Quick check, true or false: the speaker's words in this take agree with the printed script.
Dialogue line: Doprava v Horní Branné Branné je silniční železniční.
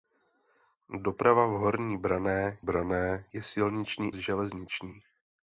true